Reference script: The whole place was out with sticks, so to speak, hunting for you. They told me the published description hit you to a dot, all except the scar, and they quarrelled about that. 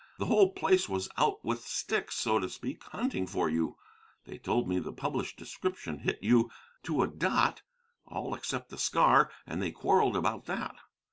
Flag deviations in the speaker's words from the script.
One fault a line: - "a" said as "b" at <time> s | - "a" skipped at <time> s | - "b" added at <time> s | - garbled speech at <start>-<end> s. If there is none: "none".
none